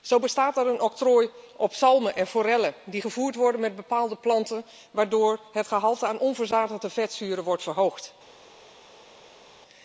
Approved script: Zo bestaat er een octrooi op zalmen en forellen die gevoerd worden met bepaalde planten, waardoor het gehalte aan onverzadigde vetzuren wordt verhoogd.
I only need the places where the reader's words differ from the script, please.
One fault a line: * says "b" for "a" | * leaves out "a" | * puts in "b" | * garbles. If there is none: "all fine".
all fine